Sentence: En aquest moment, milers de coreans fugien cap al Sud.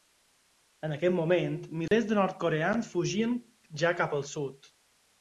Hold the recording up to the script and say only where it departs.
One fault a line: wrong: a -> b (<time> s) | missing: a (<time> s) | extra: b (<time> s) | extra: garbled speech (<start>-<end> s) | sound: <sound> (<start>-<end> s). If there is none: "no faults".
sound: dropout (1.9-1.9 s)
extra: nord (2.2 s)
extra: ja (3.9 s)